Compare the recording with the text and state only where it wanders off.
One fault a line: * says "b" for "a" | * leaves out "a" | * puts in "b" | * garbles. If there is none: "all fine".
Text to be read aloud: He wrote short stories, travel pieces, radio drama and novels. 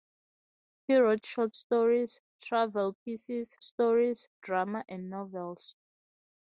* says "stories" for "radio"